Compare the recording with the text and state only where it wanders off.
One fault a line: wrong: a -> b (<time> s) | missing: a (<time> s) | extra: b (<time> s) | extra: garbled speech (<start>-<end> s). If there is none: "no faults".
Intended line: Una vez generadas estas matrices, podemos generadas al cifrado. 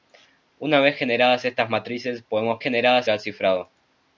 no faults